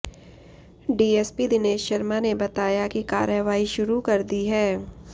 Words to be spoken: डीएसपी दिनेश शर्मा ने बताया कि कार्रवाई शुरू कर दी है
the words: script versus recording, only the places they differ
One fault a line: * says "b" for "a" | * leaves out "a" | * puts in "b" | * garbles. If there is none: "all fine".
all fine